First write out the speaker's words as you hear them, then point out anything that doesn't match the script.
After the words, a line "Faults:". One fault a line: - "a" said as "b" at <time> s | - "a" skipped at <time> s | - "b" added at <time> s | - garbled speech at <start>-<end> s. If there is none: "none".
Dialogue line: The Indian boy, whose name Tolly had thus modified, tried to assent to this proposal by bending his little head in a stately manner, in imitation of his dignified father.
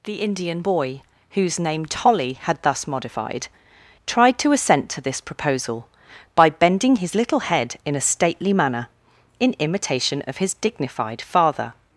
The Indian boy, whose name Tolly had thus modified, tried to assent to this proposal by bending his little head in a stately manner, in imitation of his dignified father.
Faults:
none